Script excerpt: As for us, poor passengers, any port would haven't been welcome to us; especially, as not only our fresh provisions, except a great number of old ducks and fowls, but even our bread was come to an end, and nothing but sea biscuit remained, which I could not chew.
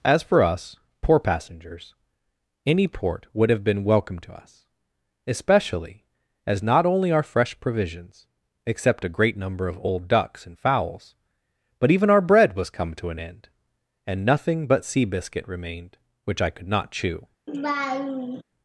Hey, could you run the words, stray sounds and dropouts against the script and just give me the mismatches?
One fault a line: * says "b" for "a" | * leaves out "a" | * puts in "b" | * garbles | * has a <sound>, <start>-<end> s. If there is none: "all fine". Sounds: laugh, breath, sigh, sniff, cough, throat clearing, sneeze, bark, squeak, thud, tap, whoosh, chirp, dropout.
* says "have" for "haven't"
* has a laugh, 17.5-18.4 s